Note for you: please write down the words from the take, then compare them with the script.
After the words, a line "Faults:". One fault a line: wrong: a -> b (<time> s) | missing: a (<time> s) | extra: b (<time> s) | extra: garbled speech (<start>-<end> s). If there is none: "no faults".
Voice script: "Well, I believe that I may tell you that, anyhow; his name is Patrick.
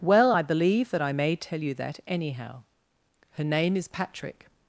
"Well, I believe that I may tell you that, anyhow; her name is Patrick.
Faults:
wrong: his -> her (3.3 s)